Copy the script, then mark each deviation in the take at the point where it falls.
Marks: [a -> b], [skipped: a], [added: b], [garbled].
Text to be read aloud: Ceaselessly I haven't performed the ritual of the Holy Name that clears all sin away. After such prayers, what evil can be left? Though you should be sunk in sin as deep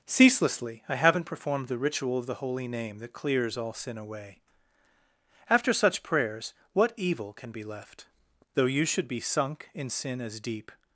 Ceaselessly I haven't performed the ritual of the Holy Name that clears all sin away. After such prayers, what evil can be left? Though you should be sunk in sin as deep